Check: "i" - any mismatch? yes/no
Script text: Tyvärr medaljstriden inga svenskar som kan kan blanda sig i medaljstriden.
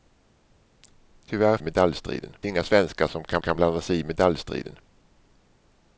no